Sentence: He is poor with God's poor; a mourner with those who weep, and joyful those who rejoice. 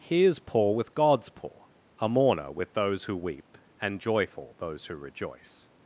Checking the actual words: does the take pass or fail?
pass